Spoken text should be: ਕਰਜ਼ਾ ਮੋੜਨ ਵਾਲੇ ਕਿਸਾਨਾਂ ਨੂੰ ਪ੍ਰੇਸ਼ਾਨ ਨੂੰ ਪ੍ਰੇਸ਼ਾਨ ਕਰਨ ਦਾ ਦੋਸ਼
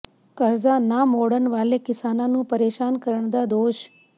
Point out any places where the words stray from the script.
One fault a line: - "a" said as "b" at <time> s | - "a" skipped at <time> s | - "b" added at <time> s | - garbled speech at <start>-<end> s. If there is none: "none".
- "ਨਾ" added at 0.8 s
- "ਨੂੰ ਪ੍ਰੇਸ਼ਾਨ" skipped at 3.0 s